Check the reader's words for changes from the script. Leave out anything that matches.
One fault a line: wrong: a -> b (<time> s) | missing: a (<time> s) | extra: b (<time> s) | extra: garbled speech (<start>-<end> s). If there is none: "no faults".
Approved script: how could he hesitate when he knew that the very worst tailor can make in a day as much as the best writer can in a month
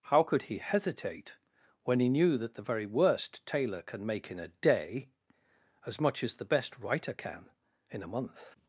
no faults